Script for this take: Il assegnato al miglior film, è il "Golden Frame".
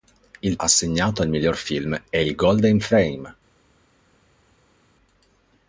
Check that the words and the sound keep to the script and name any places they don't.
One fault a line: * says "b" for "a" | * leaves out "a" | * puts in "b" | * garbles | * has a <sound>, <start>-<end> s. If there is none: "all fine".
all fine